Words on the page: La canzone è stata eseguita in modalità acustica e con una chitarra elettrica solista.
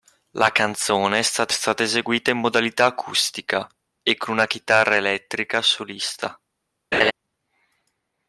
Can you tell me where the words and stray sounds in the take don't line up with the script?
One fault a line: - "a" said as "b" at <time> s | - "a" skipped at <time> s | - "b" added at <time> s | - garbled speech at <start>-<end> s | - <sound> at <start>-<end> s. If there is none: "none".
- "stata" added at 1.5 s
- laugh at 6.9-7.1 s